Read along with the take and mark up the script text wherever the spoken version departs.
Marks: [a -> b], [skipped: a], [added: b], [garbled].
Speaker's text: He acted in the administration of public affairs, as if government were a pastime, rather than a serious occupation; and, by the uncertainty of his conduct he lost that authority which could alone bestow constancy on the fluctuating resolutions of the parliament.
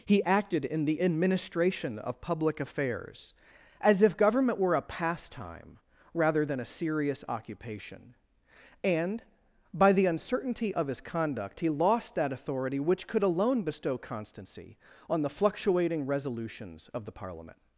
He acted in the administration of public affairs, as if government were a pastime, rather than a serious occupation; and, by the uncertainty of his conduct he lost that authority which could alone bestow constancy on the fluctuating resolutions of the parliament.